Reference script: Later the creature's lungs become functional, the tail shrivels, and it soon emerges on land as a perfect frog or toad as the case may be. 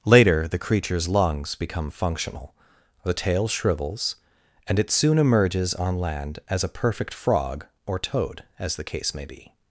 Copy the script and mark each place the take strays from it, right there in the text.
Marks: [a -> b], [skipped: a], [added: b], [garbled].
Later the creature's lungs become functional, the tail shrivels, and it soon emerges on land as a perfect frog or toad as the case may be.